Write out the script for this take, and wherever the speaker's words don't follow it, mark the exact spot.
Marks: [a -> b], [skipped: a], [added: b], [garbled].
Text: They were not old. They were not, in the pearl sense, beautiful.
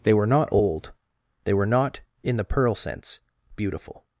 They were not old. They were not, in the pearl sense, beautiful.